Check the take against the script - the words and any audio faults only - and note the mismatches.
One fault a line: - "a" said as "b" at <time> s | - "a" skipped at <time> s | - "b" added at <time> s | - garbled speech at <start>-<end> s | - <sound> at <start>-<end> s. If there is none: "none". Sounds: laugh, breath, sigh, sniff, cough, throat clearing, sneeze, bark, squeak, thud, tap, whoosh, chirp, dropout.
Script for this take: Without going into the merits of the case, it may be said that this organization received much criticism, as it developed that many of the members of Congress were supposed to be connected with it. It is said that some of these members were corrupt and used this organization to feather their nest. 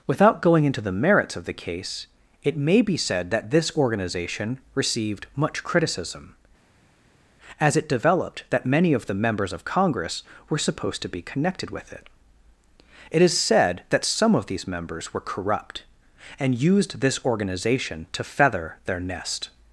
none